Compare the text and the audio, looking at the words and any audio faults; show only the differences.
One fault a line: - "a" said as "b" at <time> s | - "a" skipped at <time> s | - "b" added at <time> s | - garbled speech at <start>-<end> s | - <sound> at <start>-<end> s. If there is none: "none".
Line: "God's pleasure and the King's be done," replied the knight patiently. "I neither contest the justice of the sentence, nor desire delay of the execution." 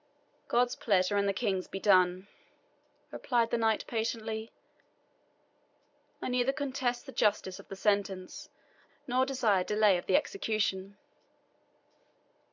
none